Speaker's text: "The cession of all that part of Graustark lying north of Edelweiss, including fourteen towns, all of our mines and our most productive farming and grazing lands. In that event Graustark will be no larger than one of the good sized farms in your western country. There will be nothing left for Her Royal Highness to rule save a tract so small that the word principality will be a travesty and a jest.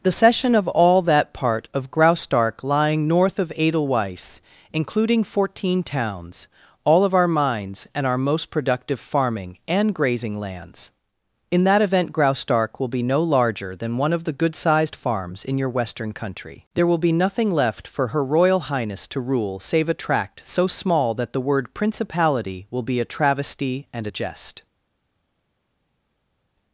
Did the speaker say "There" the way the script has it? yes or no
yes